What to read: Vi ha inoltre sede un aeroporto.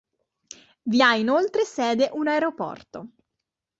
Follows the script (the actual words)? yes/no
yes